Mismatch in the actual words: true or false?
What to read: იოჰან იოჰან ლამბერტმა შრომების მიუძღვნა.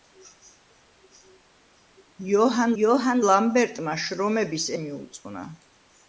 false